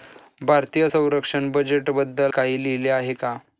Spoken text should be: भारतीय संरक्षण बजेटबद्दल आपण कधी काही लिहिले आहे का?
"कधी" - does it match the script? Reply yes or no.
no